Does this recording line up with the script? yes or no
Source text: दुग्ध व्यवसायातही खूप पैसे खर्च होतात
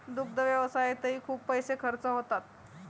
yes